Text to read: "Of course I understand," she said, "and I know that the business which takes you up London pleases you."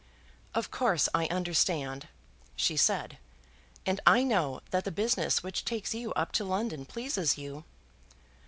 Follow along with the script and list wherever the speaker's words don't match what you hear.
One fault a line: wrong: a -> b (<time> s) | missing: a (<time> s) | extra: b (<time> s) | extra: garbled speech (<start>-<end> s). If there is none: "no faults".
extra: to (6.3 s)